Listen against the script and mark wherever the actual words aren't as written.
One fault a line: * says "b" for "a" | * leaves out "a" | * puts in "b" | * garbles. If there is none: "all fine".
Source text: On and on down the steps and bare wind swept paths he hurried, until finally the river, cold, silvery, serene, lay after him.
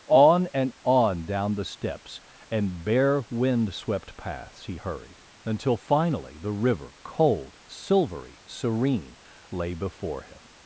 * says "before" for "after"